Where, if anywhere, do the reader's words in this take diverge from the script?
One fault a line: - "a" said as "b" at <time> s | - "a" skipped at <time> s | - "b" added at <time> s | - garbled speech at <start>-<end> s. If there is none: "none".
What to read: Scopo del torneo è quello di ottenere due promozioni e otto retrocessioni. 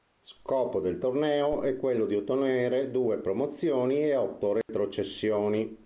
none